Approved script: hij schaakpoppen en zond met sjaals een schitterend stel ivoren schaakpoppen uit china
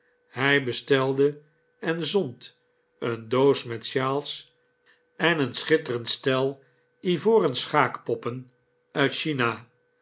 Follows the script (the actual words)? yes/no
no